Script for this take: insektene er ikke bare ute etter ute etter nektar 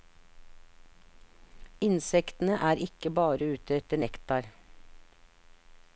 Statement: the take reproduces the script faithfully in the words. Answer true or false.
false